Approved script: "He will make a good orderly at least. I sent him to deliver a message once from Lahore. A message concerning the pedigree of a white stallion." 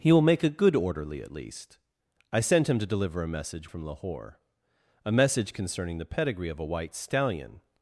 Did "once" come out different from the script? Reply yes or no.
yes